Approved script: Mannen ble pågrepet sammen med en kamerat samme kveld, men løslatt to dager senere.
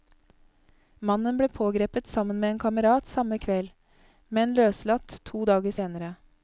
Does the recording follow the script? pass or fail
pass